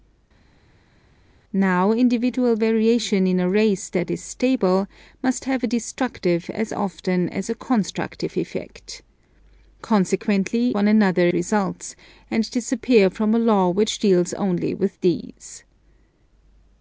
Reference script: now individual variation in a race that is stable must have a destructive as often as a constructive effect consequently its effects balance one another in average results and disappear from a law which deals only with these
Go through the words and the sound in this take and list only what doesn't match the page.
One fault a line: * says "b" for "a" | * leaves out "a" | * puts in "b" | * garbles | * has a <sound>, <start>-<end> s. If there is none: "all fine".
* leaves out "its effects balance"
* leaves out "in average"